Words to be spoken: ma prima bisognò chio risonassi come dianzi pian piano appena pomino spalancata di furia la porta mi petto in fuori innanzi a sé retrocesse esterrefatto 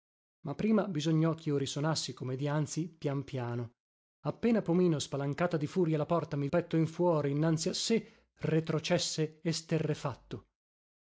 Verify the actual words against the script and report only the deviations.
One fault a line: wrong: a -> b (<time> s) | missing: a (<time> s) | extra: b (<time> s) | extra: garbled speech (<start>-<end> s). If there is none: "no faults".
no faults